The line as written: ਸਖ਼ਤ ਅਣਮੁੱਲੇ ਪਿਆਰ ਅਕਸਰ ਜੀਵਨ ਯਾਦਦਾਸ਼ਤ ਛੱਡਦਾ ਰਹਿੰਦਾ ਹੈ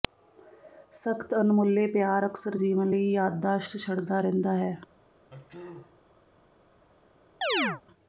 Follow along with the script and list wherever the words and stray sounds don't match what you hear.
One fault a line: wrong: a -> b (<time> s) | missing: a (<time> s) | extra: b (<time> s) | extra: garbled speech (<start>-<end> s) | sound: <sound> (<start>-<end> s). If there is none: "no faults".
extra: ਲਈ (2.9 s)
sound: sneeze (5.3-6.0 s)
sound: chirp (7.4-7.8 s)